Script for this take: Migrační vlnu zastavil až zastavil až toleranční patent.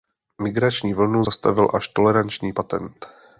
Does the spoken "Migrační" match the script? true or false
true